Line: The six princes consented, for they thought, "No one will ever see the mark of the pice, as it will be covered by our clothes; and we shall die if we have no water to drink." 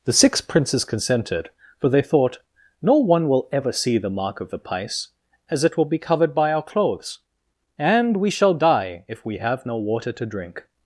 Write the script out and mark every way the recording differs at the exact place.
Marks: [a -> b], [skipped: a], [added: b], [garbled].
The six princes consented, for they thought, "No one will ever see the mark of the pice, as it will be covered by our clothes; and we shall die if we have no water to drink."